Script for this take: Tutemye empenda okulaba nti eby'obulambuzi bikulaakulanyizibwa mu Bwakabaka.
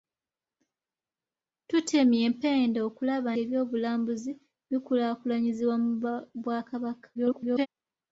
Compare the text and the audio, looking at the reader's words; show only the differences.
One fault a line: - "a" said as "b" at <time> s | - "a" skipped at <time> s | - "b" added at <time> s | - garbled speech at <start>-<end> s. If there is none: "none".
- "nti" skipped at 3.3 s
- garbled speech at 7.1-7.7 s